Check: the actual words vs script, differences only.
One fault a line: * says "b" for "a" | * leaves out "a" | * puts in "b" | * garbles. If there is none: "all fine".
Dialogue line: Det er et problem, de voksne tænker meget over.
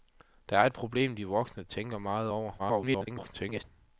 * garbles